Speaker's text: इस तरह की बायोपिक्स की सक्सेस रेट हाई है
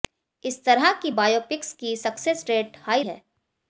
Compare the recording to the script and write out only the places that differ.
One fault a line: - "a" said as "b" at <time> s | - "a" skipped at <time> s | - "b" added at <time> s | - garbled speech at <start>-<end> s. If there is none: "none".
none